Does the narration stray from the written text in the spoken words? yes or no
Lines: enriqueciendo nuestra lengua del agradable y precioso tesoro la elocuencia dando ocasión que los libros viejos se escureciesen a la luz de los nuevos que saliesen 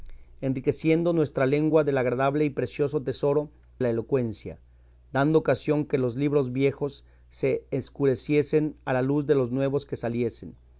no